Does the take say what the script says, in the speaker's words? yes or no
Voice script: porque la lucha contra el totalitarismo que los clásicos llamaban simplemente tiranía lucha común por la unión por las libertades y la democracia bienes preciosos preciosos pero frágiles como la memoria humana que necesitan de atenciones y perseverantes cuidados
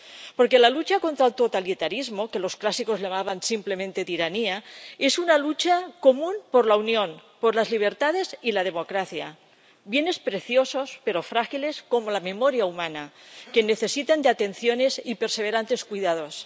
no